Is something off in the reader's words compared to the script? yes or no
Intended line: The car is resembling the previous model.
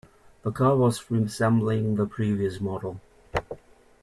yes